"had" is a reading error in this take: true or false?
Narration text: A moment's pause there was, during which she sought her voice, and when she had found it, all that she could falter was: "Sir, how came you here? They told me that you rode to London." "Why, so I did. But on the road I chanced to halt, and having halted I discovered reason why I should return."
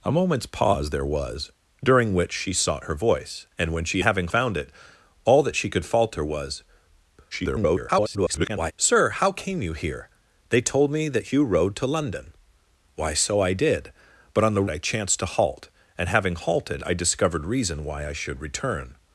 true